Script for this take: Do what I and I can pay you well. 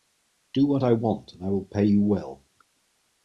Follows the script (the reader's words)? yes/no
no